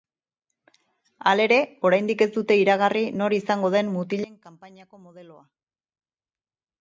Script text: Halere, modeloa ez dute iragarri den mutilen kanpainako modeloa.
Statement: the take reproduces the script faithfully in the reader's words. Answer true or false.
false